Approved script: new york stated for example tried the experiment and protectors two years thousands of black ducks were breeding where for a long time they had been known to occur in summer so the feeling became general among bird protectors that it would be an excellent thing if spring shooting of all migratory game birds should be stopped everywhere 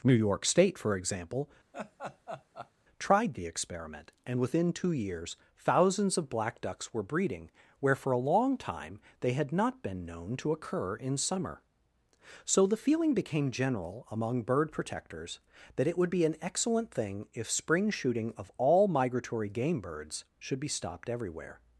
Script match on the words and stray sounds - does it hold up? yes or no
no